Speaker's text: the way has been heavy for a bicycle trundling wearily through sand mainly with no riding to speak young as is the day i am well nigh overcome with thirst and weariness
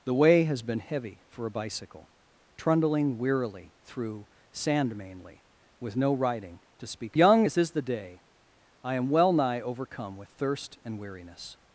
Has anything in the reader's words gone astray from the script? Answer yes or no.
no